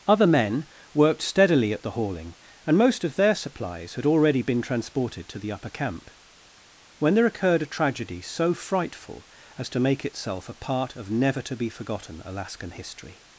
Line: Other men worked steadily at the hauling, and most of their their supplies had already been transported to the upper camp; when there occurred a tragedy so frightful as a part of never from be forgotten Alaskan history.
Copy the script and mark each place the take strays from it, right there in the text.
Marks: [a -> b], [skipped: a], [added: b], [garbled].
Other men worked steadily at the hauling, and most of their [skipped: their] supplies had already been transported to the upper camp; when there occurred a tragedy so frightful as [added: to make itself] a part of never [from -> to] be forgotten Alaskan history.